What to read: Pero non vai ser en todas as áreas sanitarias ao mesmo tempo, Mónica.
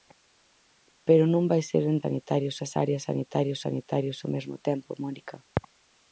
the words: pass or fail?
fail